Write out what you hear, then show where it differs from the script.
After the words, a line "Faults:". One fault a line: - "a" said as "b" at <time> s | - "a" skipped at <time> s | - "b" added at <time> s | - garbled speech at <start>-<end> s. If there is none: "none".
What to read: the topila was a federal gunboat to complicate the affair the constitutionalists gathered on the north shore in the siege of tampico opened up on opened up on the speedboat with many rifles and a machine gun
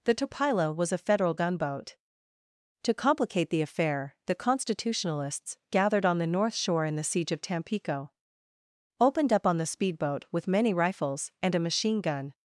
the topila was a federal gunboat to complicate the affair the constitutionalists gathered on the north shore in the siege of tampico opened up on the speedboat with many rifles and a machine gun
Faults:
- "opened up on" skipped at 9.6 s